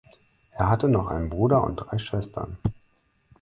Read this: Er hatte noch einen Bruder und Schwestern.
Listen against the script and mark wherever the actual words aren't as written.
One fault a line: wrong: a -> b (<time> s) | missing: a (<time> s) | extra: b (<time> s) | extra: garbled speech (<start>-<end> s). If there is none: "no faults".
extra: drei (1.8 s)